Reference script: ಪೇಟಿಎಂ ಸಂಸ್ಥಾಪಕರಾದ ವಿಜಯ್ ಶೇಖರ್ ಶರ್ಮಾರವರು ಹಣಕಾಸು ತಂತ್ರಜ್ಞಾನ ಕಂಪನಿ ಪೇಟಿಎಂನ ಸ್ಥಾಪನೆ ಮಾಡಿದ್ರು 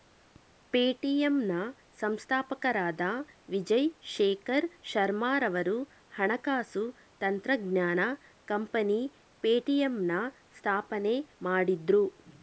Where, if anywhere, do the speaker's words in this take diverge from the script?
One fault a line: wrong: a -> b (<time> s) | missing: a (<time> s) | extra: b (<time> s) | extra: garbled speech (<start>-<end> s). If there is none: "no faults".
extra: ನ (1.4 s)